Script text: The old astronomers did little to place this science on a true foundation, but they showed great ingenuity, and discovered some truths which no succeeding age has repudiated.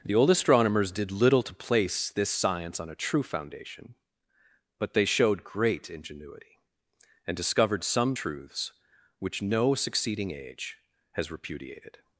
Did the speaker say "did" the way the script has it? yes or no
yes